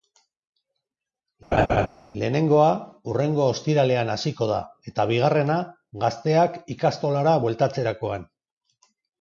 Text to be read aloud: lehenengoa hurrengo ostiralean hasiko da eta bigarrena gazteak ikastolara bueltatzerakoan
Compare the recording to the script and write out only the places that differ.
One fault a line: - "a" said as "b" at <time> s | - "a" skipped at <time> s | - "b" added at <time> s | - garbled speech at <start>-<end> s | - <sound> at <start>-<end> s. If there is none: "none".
- laugh at 1.5-1.9 s